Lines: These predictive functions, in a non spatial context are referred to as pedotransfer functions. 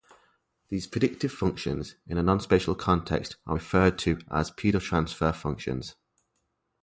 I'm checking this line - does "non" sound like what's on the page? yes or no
yes